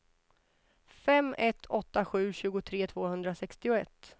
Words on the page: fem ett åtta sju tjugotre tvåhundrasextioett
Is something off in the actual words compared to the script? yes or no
no